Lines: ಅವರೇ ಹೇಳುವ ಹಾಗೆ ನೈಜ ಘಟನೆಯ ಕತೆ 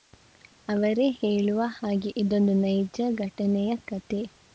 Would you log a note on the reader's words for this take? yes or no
yes